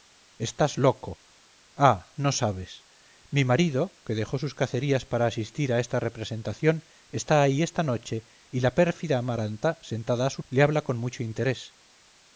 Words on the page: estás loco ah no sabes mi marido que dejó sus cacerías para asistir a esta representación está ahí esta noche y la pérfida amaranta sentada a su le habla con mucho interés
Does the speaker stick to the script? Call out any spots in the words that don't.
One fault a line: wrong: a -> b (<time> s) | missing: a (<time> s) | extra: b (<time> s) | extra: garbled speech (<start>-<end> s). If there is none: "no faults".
no faults